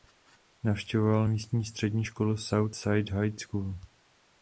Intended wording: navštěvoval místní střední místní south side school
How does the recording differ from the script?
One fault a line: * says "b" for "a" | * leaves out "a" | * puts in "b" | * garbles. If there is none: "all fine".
* says "školu" for "místní"
* puts in "high"